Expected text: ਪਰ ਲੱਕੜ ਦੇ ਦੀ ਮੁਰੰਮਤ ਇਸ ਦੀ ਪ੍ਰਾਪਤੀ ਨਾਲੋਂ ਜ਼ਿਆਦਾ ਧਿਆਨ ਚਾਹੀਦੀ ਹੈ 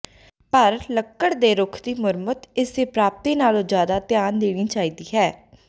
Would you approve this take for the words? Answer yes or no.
no